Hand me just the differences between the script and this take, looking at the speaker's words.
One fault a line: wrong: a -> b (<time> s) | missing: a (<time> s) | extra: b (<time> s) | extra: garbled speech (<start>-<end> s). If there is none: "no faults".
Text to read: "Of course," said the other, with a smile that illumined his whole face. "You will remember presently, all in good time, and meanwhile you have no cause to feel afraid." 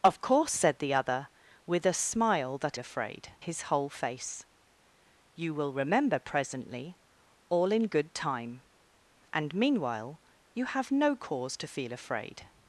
wrong: illumined -> afraid (2.8 s)